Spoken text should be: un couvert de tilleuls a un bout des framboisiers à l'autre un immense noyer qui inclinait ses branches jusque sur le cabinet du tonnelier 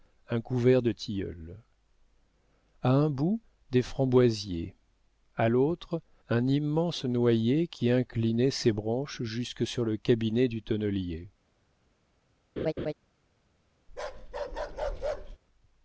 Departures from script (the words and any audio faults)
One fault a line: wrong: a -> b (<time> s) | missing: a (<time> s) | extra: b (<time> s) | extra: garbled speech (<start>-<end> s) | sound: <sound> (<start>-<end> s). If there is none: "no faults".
sound: laugh (12.6-12.9 s)
sound: bark (13.9-15.4 s)